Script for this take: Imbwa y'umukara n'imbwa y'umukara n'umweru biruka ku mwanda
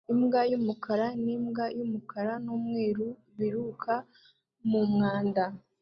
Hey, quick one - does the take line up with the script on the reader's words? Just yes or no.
no